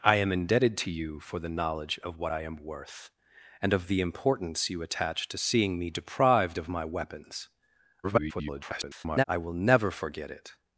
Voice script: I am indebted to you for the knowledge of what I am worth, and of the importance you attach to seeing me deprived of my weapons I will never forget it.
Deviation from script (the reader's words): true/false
true